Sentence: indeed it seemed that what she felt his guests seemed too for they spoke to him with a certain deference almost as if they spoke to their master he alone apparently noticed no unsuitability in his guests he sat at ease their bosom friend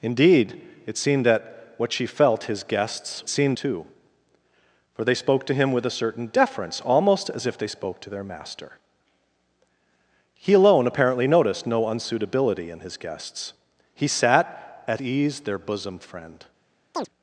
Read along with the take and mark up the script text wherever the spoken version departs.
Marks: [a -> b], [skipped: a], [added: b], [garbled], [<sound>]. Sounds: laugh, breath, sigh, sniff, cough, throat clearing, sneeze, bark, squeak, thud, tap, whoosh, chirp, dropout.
indeed it seemed that what she felt his guests seemed too for they spoke to him with a certain deference almost as if they spoke to their master he alone apparently noticed no unsuitability in his guests he sat at ease their bosom friend [chirp]